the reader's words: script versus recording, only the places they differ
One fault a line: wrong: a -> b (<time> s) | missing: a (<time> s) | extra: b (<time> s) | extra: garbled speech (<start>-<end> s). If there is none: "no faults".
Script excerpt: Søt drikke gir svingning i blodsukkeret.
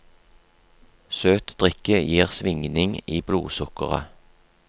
no faults